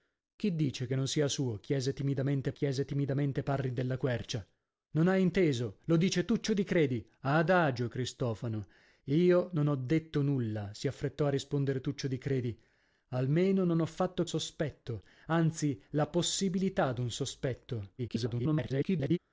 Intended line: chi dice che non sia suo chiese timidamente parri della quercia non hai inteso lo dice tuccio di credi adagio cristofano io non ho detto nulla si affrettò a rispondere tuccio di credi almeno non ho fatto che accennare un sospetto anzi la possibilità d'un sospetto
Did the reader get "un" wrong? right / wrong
wrong